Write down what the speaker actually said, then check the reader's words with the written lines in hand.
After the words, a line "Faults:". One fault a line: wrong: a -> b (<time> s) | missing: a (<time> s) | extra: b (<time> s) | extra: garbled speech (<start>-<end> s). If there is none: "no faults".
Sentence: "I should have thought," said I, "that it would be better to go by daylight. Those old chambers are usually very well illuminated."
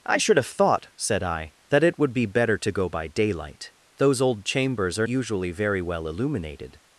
"I should have thought," said I, "that it would be better to go by daylight. Those old chambers are usually very well illuminated."
Faults:
no faults